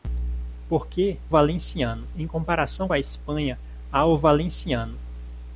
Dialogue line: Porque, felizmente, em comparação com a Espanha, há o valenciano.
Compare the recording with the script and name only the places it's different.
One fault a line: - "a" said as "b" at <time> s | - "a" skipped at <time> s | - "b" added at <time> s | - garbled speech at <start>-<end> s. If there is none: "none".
- "felizmente" said as "valenciano" at 1.3 s
- "com" skipped at 2.9 s